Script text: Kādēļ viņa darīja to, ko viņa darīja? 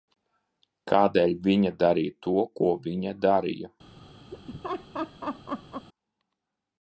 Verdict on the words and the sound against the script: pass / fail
fail